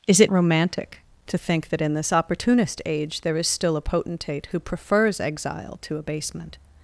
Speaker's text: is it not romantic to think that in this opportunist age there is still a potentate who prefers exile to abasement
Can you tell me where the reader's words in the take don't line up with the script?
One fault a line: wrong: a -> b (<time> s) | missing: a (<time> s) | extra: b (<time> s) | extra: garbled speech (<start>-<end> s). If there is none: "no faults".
missing: not (0.3 s)